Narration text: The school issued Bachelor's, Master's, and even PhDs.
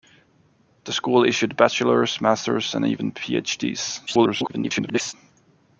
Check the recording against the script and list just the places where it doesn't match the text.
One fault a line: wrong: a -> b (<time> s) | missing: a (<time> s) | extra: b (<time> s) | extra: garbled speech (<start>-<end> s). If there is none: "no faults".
extra: garbled speech (4.1-5.1 s)